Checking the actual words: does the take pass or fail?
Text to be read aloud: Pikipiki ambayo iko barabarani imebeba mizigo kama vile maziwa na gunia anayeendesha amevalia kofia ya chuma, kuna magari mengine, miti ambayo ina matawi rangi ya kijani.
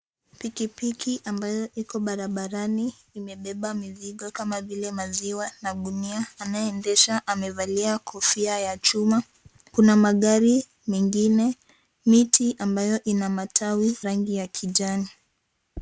pass